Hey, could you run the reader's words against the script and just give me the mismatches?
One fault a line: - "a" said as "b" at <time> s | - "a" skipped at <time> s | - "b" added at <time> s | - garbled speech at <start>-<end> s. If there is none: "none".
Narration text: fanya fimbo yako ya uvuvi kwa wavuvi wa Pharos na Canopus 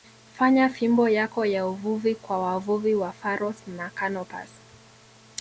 none